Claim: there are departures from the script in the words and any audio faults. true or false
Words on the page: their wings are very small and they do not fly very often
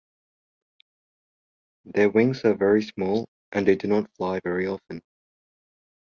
false